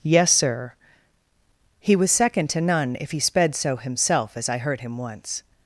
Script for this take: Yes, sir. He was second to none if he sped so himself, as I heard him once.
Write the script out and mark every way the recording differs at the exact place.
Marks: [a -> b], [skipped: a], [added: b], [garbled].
Yes, sir. He was second to none if he sped so himself, as I heard him once.